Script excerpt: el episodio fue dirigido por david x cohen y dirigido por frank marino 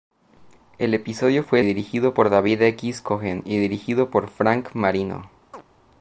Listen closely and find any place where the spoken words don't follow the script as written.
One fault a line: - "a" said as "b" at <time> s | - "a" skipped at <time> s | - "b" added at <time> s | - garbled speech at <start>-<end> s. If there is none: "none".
none